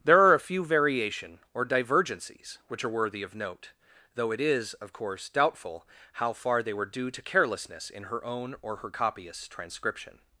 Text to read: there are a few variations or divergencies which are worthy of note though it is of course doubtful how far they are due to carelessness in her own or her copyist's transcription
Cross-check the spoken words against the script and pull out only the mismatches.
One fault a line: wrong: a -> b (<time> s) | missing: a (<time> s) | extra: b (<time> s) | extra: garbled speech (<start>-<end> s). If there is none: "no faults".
wrong: variations -> variation (0.7 s)
wrong: are -> were (6.7 s)